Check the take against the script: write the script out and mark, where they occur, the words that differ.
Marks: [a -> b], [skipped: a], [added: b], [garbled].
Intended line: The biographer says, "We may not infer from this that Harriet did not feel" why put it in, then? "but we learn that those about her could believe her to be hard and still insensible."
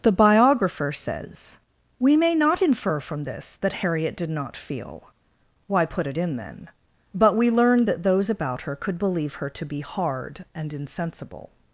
The biographer says, "We may not infer from this that Harriet did not feel" why put it in, then? "but we learn that those about her could believe her to be hard and [skipped: still] insensible."